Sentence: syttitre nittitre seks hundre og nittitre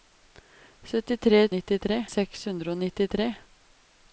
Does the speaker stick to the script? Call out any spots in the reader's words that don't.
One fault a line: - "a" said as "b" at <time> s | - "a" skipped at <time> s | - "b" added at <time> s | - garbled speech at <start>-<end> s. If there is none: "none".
none